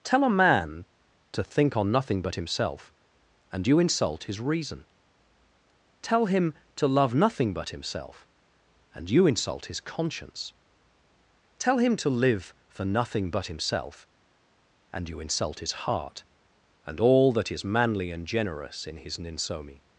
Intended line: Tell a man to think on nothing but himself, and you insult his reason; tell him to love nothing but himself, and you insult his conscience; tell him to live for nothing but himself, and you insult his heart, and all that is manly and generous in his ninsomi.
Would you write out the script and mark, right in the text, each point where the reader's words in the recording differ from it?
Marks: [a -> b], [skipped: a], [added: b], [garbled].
Tell a man to think on nothing but himself, and you insult his reason; tell him to love nothing but himself, and you insult his conscience; tell him to live for nothing but himself, and you insult his heart, and all that is manly and generous in his ninsomi.